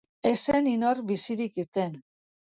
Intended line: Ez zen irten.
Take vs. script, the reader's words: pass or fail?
fail